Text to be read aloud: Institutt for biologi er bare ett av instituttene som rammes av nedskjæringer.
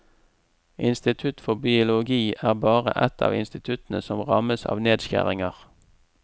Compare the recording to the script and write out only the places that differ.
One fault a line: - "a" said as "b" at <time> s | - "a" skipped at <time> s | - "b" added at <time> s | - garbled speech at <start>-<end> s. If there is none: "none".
none